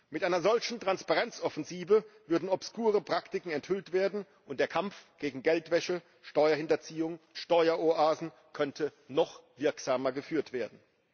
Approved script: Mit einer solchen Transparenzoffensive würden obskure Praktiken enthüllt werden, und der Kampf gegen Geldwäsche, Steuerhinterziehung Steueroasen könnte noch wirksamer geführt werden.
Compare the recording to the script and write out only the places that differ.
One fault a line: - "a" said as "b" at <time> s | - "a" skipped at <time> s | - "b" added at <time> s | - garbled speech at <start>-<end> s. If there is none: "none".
none